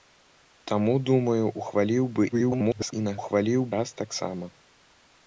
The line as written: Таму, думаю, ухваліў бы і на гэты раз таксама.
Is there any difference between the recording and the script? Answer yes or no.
yes